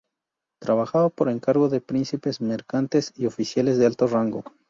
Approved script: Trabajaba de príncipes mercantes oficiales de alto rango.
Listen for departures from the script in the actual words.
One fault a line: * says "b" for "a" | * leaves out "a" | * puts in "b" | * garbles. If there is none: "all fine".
* puts in "por encargo"
* puts in "y"